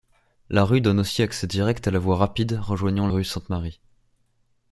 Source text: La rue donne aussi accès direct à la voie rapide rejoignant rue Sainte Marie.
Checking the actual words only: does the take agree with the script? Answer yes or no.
yes